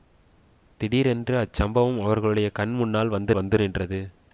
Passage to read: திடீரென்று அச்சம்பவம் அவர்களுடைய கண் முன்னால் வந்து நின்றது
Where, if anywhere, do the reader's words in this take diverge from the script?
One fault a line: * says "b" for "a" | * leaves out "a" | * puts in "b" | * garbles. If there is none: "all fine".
* puts in "வந்து"